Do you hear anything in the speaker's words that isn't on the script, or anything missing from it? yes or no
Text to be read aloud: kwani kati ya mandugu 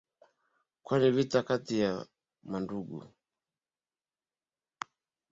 yes